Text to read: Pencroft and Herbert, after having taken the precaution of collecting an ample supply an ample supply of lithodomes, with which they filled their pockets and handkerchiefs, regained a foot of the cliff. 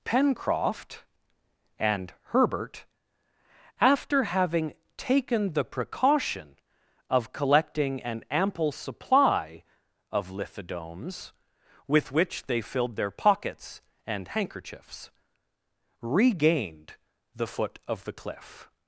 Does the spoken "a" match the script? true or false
false